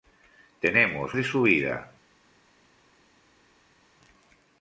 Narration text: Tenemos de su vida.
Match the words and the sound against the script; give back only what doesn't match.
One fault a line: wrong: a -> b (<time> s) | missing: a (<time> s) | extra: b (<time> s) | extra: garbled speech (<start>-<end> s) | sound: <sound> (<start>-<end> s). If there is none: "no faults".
no faults